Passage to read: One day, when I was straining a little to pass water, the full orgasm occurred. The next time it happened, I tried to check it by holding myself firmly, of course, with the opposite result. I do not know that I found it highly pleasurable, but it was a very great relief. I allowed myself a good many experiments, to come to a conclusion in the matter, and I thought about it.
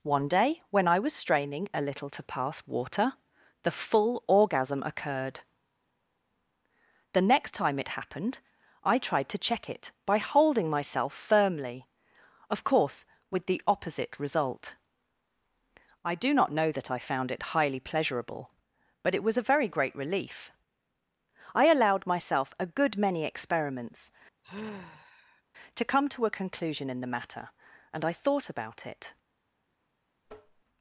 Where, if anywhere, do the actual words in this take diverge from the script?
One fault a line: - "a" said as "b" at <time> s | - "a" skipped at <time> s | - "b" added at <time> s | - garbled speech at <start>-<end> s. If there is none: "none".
none